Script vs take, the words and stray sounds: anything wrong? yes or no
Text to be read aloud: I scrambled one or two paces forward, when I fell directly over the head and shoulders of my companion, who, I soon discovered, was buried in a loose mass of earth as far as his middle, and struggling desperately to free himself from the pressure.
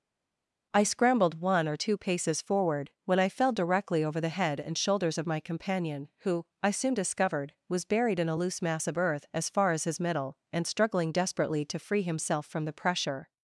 no